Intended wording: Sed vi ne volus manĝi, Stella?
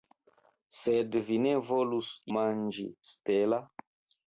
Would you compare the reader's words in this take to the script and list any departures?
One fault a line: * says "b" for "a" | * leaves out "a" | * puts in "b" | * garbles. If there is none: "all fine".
all fine